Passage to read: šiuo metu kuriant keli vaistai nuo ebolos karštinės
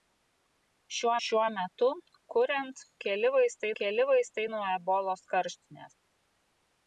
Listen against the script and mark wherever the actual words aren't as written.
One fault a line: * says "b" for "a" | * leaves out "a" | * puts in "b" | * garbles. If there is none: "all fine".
* puts in "šiuo"
* puts in "keli vaistai"